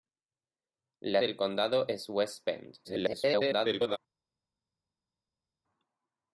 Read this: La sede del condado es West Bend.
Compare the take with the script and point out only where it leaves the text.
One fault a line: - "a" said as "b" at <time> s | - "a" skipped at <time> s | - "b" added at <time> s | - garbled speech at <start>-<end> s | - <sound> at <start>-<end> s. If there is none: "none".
- "sede" skipped at 1.2 s
- garbled speech at 2.8-4.0 s